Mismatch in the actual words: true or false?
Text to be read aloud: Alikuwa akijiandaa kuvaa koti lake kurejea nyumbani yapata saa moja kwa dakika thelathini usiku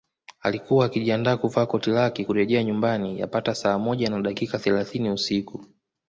true